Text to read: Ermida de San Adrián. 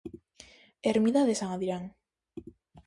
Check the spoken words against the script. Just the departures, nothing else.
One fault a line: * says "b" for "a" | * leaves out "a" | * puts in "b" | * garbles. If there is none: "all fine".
all fine